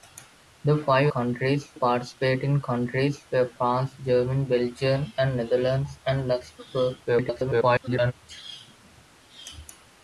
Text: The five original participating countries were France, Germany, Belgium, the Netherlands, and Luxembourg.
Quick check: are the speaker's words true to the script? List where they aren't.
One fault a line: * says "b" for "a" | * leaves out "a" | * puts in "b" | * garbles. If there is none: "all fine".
* says "countries" for "original"
* garbles